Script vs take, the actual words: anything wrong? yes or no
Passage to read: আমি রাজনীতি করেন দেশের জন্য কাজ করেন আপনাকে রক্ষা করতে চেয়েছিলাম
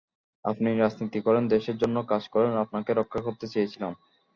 yes